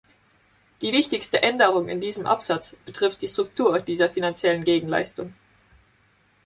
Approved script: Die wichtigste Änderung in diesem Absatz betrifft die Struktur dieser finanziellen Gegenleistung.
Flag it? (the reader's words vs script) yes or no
no